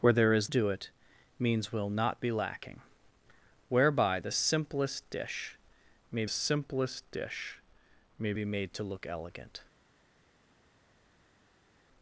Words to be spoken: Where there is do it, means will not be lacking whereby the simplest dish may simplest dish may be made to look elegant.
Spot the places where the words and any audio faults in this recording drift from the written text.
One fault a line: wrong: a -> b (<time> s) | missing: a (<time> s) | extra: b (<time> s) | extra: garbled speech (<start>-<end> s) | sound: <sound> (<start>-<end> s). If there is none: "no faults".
no faults